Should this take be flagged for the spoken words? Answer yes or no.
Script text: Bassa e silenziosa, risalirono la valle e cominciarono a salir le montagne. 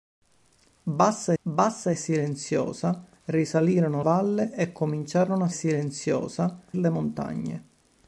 yes